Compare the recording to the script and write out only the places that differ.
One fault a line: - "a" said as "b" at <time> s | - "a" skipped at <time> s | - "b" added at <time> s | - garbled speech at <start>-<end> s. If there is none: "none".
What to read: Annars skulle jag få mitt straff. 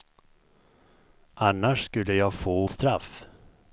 - "mitt" skipped at 2.7 s